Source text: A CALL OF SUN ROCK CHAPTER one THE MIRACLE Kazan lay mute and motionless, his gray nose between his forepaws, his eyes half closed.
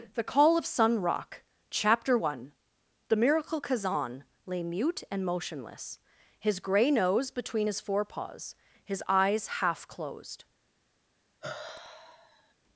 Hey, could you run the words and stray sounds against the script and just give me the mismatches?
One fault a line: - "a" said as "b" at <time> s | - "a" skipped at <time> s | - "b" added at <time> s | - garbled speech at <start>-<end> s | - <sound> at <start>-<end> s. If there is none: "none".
- "A" said as "THE" at 0.1 s
- sigh at 11.4-12.5 s